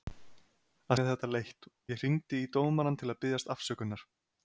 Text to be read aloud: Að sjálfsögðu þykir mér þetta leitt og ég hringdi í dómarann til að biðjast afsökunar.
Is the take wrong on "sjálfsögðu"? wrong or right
wrong